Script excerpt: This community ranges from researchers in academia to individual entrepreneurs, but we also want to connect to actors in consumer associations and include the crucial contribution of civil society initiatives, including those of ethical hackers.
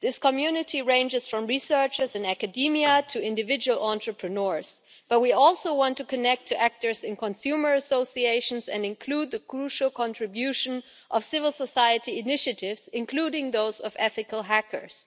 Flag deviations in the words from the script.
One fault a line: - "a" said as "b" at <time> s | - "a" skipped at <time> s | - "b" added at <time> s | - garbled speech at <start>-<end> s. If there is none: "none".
none